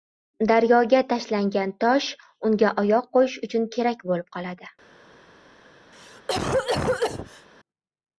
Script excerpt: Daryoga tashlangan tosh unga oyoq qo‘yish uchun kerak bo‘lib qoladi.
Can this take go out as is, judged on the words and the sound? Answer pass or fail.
fail